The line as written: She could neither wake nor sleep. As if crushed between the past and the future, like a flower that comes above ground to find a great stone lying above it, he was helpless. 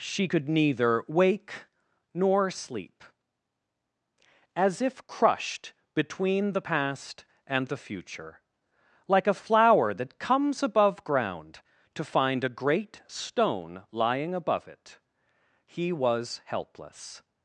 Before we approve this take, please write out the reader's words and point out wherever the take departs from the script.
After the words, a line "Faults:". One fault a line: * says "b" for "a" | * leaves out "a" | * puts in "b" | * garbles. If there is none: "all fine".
She could neither wake nor sleep. As if crushed between the past and the future, like a flower that comes above ground to find a great stone lying above it, he was helpless.
Faults:
all fine